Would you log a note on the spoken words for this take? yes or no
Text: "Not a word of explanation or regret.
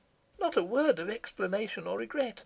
no